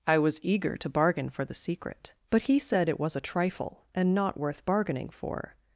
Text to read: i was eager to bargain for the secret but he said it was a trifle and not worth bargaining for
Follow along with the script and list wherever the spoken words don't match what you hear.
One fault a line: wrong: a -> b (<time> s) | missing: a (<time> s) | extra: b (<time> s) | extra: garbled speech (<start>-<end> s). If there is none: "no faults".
no faults